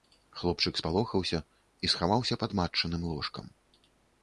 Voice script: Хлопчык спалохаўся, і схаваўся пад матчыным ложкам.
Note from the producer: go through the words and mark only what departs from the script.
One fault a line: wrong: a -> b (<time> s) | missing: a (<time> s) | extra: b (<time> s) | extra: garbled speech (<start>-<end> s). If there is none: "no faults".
no faults